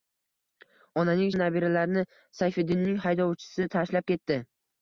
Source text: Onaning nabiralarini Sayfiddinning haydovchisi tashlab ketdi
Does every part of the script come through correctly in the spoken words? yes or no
yes